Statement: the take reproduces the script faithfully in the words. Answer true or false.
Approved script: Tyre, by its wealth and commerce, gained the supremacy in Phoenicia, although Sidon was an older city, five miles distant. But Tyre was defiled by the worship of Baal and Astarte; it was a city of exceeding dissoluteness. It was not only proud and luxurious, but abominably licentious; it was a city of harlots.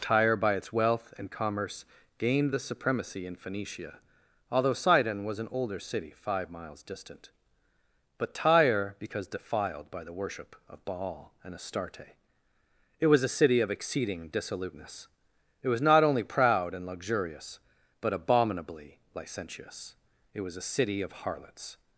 false